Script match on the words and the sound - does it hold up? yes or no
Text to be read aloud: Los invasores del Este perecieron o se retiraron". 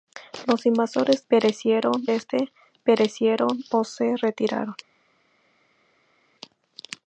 no